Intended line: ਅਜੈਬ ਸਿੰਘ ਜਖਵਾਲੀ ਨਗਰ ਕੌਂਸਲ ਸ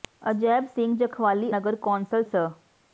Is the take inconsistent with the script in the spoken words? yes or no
no